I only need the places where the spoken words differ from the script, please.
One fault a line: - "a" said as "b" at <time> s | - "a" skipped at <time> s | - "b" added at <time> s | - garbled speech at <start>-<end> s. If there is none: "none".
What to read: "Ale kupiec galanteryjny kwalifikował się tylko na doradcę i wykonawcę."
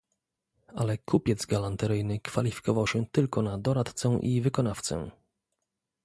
none